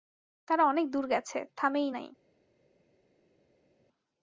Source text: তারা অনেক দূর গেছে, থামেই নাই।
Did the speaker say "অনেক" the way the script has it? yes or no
yes